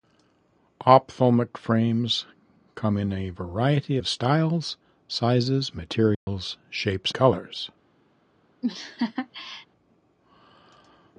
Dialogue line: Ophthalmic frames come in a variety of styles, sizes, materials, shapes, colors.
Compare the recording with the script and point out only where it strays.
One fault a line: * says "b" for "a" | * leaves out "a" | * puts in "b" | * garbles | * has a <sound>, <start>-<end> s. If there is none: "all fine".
* has a dropout, 6.1-6.3 s
* has a laugh, 8.6-9.7 s